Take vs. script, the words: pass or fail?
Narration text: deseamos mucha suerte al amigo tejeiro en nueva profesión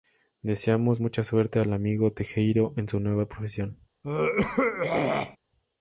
fail